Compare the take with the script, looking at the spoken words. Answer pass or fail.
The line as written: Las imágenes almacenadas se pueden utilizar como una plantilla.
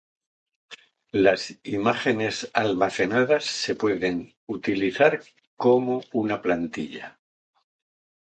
pass